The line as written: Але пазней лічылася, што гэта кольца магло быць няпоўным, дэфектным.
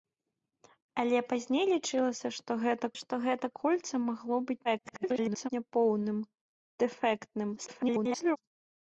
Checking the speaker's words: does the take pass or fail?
fail